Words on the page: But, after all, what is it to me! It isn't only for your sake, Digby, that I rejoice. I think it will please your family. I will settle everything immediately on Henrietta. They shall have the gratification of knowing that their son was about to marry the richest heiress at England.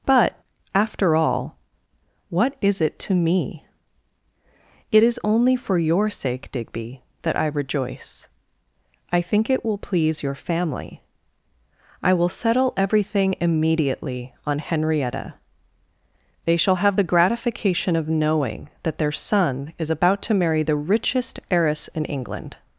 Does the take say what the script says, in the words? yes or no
no